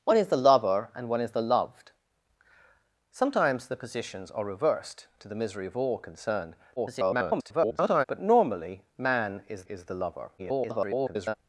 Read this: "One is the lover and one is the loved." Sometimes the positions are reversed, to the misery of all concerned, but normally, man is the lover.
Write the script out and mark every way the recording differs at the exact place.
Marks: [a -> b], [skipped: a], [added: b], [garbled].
"One is the lover and one is the loved." Sometimes the positions are reversed, to the misery of all concerned, [garbled] but normally, man is [added: is] the lover. [garbled]